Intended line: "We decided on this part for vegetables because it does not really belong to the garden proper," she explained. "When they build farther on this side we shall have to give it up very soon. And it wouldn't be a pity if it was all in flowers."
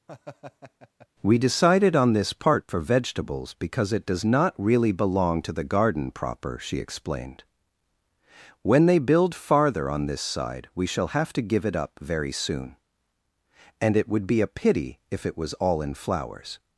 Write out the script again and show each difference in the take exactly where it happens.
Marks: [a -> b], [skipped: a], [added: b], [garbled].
"We decided on this part for vegetables because it does not really belong to the garden proper," she explained. "When they build farther on this side we shall have to give it up very soon. And it [wouldn't -> would] be a pity if it was all in flowers."